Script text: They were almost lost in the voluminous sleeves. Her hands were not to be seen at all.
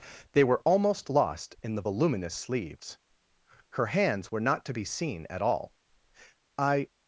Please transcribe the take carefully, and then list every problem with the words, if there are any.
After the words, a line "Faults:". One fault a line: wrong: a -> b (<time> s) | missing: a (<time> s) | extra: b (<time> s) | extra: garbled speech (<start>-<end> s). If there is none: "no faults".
They were almost lost in the voluminous sleeves. Her hands were not to be seen at all. "I
Faults:
extra: I (6.6 s)